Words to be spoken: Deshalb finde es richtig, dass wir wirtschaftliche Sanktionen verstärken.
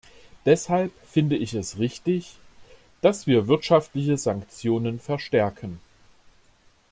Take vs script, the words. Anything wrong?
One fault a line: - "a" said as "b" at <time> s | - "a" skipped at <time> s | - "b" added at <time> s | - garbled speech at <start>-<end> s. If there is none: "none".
- "ich" added at 1.4 s